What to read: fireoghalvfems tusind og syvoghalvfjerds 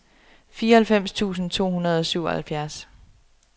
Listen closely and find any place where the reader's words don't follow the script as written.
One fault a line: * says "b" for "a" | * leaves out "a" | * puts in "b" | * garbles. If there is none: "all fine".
* puts in "to hundrede"